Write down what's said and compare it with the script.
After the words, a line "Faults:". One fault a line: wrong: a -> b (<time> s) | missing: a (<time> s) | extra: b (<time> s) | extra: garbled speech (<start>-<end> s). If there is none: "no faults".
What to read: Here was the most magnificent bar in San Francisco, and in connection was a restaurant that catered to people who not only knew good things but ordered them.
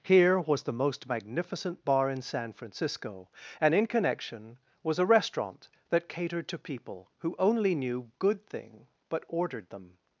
Here was the most magnificent bar in San Francisco, and in connection was a restaurant that catered to people who only knew good thing but ordered them.
Faults:
missing: not (7.3 s)
wrong: things -> thing (8.5 s)